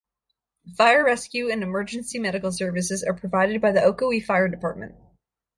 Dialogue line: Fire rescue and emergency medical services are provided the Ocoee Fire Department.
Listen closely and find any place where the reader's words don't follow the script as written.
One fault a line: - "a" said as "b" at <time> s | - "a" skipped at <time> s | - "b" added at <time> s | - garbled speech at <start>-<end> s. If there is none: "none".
- "by" added at 3.6 s